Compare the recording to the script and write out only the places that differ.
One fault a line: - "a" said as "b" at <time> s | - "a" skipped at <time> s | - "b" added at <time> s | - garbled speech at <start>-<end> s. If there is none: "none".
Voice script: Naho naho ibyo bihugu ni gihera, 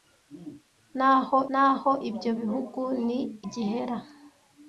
none